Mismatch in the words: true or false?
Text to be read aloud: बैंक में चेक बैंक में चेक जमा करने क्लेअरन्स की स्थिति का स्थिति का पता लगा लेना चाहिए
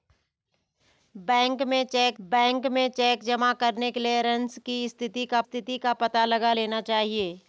false